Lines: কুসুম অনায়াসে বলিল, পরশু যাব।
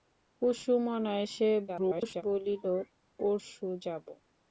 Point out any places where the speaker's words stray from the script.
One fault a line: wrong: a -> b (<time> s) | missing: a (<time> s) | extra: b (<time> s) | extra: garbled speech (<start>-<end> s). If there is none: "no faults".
extra: garbled speech (1.7-2.2 s)